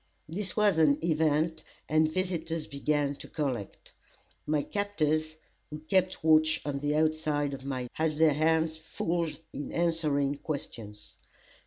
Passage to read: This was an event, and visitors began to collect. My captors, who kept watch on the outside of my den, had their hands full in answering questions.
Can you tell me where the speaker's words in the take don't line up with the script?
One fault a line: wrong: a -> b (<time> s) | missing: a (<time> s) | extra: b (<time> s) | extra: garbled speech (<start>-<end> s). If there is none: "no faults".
missing: den (7.8 s)